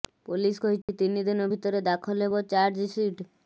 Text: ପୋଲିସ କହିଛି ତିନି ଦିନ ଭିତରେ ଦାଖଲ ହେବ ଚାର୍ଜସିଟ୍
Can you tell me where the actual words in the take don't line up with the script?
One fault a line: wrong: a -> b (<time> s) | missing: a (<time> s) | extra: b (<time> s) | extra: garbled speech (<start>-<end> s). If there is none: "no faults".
no faults